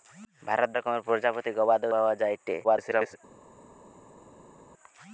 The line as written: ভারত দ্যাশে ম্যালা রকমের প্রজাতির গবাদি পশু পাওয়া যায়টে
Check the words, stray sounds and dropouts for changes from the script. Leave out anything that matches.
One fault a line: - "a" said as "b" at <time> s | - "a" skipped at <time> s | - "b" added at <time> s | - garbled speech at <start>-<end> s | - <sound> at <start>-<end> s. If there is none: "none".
- "দ্যাশে ম্যালা" skipped at 0.7 s
- "পশু" skipped at 1.9 s
- garbled speech at 2.6-3.2 s